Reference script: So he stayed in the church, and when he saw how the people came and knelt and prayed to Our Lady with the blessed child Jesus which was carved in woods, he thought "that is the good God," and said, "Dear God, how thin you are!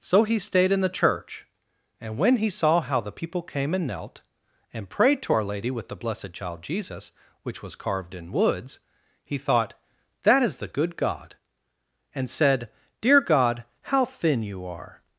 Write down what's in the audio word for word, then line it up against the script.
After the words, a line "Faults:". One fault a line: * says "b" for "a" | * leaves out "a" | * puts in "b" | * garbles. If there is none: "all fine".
So he stayed in the church, and when he saw how the people came and knelt and prayed to Our Lady with the blessed child Jesus which was carved in woods, he thought "that is the good God," and said, "Dear God, how thin you are!
Faults:
all fine